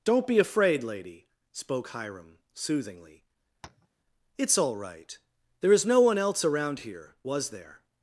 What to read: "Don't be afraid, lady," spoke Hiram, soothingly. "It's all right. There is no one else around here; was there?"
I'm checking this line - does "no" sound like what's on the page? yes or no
yes